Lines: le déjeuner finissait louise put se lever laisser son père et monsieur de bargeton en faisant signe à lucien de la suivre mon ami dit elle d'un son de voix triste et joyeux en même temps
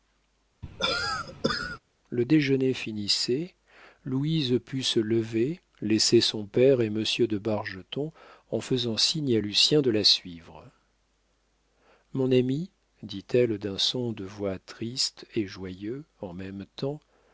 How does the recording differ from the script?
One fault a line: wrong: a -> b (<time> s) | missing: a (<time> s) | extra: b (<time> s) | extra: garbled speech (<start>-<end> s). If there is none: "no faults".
no faults